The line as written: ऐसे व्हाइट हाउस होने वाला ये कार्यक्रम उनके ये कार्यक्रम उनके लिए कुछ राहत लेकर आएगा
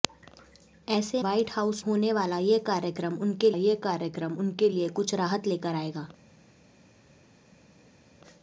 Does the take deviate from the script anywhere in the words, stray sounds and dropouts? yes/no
no